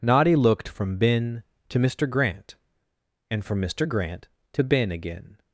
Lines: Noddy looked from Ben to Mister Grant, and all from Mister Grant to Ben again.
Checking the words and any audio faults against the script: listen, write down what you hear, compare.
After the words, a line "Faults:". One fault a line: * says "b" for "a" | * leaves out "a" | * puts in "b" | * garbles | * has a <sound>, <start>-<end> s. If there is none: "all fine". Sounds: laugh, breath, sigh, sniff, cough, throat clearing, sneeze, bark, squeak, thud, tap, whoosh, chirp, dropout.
Noddy looked from Ben to Mister Grant, and from Mister Grant to Ben again.
Faults:
* leaves out "all"